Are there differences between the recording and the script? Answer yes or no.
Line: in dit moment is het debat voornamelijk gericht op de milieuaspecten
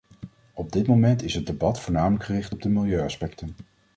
yes